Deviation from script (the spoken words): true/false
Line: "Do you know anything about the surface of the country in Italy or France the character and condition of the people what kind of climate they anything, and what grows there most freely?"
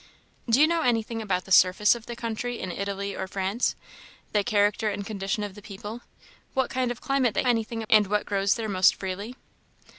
false